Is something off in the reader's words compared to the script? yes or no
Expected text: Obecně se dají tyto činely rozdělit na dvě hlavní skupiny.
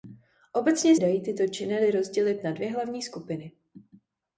yes